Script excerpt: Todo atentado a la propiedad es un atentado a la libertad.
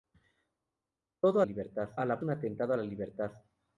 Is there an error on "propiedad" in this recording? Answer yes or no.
yes